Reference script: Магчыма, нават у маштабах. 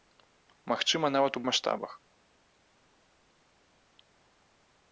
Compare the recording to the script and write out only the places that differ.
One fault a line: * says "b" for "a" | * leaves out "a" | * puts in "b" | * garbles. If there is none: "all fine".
all fine